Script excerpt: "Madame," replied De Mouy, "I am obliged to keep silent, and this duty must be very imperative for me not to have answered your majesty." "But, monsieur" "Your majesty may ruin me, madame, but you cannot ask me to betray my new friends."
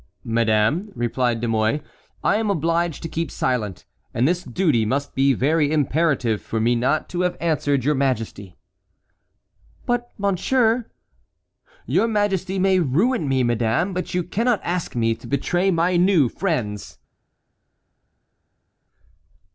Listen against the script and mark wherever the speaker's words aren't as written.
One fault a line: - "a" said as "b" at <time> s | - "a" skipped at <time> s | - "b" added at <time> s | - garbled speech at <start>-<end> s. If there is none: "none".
none